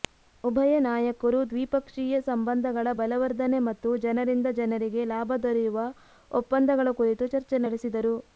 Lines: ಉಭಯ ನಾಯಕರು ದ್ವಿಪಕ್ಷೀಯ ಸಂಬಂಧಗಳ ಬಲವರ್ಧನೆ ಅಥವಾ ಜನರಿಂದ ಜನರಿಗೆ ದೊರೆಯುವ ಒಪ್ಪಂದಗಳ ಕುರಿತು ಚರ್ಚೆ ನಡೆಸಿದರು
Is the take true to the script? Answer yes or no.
no